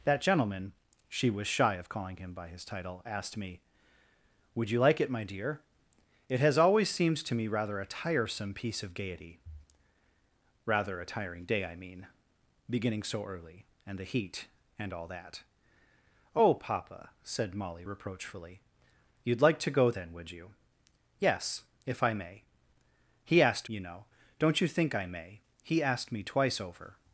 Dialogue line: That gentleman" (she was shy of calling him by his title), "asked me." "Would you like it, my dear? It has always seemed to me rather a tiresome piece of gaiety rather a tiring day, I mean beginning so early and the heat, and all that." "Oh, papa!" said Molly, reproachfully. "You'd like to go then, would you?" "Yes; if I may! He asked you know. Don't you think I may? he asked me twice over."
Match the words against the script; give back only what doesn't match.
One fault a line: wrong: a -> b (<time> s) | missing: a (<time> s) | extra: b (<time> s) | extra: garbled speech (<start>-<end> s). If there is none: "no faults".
no faults